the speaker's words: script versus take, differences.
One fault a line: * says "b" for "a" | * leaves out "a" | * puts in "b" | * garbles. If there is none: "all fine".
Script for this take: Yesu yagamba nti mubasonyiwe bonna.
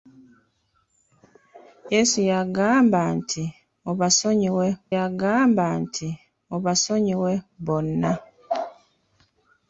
* puts in "yagamba nti mubasonyiwe"